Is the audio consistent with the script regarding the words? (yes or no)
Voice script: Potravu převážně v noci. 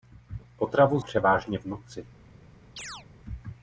yes